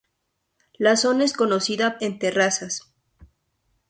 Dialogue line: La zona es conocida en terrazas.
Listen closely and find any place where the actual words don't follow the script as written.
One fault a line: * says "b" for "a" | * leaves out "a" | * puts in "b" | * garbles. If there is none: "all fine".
all fine